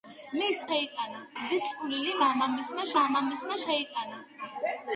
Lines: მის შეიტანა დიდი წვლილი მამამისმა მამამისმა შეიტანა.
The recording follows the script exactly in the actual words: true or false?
true